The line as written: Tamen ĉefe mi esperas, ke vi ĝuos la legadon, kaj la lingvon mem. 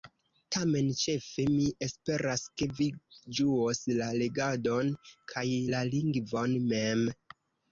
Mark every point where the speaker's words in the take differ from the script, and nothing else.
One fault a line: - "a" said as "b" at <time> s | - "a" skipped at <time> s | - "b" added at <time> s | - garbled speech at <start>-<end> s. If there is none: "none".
none